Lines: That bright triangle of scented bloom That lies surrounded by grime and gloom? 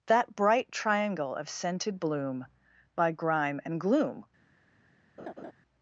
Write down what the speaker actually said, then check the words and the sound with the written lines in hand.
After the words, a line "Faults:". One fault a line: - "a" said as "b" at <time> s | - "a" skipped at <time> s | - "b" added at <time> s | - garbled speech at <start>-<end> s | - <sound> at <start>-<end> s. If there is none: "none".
That bright triangle of scented bloom By grime and gloom?
Faults:
- "That lies surrounded" skipped at 2.5 s
- laugh at 5.2-5.5 s